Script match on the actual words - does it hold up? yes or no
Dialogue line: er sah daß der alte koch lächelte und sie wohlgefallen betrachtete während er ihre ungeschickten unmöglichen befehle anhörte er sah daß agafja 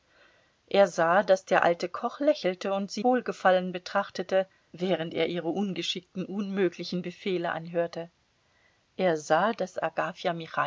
yes